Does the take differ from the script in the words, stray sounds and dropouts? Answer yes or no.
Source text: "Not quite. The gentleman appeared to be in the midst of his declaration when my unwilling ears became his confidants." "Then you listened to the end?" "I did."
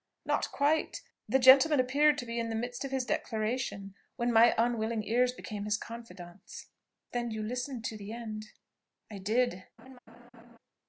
yes